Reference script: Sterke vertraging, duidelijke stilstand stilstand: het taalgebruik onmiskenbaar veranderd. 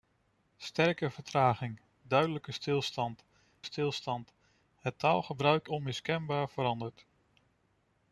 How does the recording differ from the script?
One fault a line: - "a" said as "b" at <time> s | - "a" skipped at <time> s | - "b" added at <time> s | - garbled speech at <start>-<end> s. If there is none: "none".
none